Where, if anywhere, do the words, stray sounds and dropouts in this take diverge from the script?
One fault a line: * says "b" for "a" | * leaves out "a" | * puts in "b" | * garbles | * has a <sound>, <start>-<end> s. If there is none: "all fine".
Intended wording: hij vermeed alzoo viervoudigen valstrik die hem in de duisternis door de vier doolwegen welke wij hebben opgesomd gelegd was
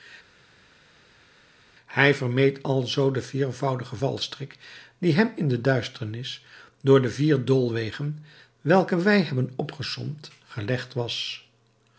* puts in "den"